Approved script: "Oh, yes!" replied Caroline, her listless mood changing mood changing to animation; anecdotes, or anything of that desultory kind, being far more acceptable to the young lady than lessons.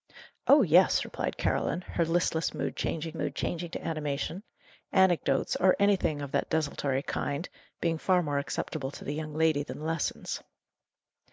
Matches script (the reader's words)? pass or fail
pass